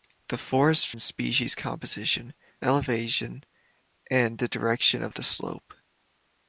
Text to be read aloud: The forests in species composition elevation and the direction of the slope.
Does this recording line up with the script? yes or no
yes